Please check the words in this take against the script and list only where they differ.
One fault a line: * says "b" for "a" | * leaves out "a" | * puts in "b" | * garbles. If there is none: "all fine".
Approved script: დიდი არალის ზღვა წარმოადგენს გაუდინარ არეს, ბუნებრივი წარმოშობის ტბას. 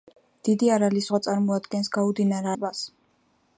* leaves out "არეს ბუნებრივი წარმოშობის"